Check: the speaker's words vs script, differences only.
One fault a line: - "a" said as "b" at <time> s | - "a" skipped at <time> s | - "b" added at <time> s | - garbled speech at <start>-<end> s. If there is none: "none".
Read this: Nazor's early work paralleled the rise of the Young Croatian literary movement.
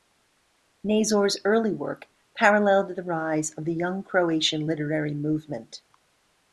none